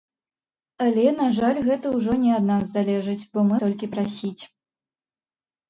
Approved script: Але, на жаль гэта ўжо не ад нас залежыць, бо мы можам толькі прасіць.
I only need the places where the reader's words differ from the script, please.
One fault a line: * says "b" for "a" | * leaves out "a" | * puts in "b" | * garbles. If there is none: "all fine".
* leaves out "можам"